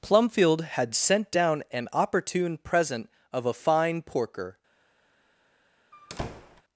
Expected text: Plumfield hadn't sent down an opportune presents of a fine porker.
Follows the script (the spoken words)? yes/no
no